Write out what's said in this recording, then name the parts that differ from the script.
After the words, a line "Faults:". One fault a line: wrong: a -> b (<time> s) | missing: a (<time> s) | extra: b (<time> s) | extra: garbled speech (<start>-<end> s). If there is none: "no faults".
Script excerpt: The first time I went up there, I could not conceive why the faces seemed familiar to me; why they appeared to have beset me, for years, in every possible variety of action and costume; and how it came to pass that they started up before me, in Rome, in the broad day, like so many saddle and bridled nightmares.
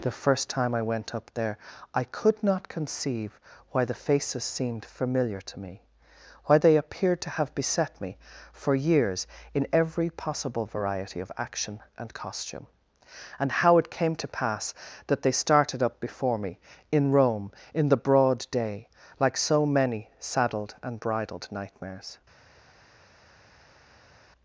The first time I went up there, I could not conceive why the faces seemed familiar to me; why they appeared to have beset me, for years, in every possible variety of action and costume; and how it came to pass that they started up before me, in Rome, in the broad day, like so many saddled and bridled nightmares.
Faults:
wrong: saddle -> saddled (20.2 s)